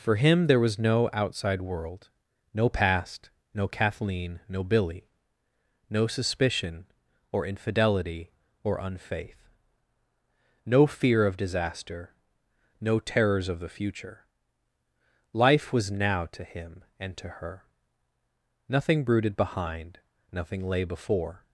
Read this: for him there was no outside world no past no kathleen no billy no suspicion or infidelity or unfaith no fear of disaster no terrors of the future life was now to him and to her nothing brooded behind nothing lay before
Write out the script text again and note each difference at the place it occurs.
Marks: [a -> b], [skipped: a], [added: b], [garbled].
for him there was no outside world no past no kathleen no billy no suspicion or infidelity or unfaith no fear of disaster no terrors of the future life was now to him and to her nothing brooded behind nothing lay before